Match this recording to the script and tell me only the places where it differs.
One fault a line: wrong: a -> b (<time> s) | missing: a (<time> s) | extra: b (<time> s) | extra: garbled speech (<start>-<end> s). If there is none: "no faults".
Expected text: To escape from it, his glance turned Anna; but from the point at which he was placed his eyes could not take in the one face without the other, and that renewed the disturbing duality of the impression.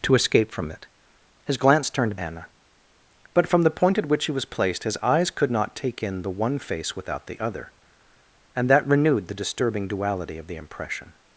no faults